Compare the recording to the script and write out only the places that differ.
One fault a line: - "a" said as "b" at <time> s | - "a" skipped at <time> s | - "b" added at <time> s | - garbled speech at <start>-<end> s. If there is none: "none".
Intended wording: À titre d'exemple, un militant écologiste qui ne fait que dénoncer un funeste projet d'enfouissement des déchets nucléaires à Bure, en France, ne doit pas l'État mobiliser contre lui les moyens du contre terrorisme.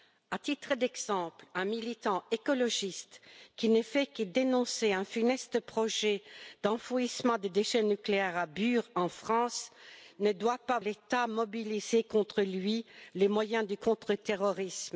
none